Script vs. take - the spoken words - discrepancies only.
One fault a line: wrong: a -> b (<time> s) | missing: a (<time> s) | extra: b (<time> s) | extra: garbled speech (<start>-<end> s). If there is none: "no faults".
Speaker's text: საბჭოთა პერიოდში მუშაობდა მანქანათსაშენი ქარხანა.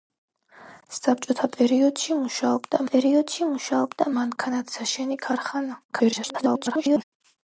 extra: პერიოდში მუშაობდა (2.9 s)
extra: garbled speech (5.9-7.0 s)